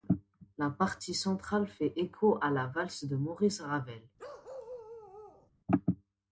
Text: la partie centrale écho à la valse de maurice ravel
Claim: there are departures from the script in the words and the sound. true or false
true